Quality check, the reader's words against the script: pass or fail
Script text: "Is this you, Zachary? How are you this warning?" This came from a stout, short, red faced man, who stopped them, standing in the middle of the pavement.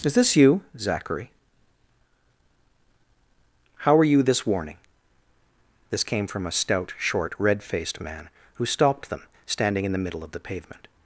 pass